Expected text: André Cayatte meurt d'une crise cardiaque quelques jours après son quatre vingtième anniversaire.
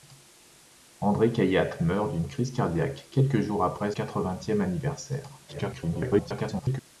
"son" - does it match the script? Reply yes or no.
no